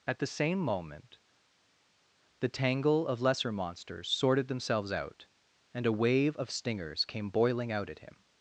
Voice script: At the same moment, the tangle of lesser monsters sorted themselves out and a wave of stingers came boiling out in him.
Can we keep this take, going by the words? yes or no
no